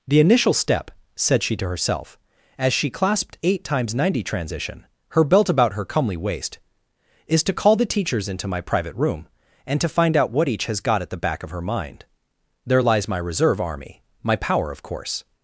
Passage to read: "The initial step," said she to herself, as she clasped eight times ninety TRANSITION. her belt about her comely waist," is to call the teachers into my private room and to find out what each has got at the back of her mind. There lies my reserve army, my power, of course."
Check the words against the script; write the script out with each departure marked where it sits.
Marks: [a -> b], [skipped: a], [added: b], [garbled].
"The initial step," said she to herself, as she clasped eight times ninety TRANSITION. her belt about her comely waist," is to call the teachers into my private room and to find out what each has got at the back of her mind. There lies my reserve army, my power, of course."